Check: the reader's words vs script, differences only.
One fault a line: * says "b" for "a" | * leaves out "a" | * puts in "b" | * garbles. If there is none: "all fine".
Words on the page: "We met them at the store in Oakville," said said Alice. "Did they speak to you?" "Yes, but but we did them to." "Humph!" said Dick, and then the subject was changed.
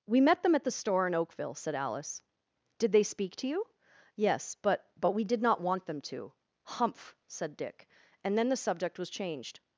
* leaves out "said"
* puts in "not want"